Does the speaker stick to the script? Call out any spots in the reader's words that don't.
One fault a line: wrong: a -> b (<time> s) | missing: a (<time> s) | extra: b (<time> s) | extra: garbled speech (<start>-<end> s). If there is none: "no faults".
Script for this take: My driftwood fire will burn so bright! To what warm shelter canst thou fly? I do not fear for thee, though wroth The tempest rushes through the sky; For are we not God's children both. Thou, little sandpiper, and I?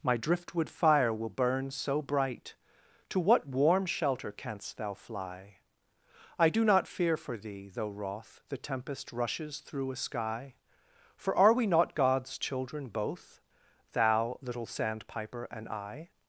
wrong: the -> a (9.9 s)